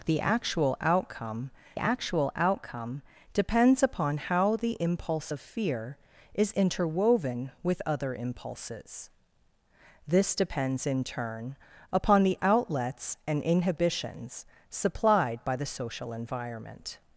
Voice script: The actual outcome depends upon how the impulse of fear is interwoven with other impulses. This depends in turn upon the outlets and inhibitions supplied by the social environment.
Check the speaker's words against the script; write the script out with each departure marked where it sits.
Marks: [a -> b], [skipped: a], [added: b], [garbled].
The actual outcome [added: actual outcome] depends upon how the impulse of fear is interwoven with other impulses. This depends in turn upon the outlets and inhibitions supplied by the social environment.